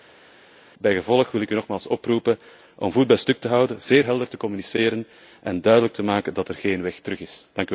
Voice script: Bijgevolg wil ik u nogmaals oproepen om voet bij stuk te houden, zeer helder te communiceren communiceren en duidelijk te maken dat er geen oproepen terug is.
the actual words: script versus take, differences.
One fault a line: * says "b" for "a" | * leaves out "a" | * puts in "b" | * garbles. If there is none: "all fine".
* leaves out "communiceren"
* says "weg" for "oproepen"